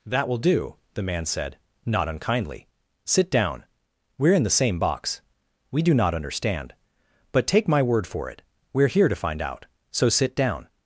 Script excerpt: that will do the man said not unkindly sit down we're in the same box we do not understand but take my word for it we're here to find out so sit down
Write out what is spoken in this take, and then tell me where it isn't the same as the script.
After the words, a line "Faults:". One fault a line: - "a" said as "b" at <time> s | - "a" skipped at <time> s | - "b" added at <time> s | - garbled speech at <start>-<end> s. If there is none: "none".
that will do the man said not unkindly sit down we're in the same box we do not understand but take my word for it we're here to find out so sit down
Faults:
none